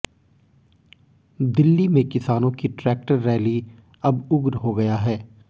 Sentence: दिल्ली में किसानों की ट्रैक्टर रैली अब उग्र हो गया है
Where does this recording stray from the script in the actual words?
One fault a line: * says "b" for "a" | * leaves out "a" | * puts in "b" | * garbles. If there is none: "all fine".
all fine